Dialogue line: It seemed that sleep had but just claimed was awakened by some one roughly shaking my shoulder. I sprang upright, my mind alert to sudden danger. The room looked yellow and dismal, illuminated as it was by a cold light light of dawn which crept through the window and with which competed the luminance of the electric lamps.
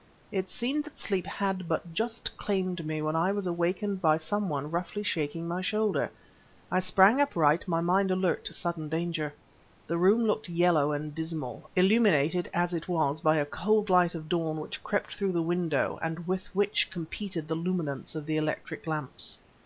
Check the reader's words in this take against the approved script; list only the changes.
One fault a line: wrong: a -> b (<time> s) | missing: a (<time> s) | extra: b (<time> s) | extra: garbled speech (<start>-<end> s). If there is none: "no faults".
extra: me when I (2.8 s)
missing: light (14.2 s)